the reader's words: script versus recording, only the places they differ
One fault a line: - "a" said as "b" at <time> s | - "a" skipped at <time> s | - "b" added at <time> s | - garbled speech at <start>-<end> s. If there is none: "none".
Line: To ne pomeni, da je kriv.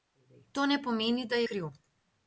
- "je" skipped at 1.4 s